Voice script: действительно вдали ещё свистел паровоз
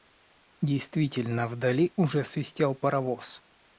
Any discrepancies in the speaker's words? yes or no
yes